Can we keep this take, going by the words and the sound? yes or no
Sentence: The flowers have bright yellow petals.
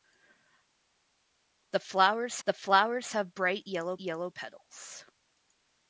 no